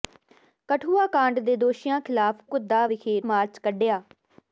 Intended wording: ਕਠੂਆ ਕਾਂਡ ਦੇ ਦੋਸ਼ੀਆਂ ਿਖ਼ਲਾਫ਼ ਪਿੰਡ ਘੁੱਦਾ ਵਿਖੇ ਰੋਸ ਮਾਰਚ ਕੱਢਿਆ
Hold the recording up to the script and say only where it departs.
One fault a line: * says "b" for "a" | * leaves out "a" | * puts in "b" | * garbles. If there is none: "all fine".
* leaves out "ਪਿੰਡ"
* leaves out "ਰੋਸ"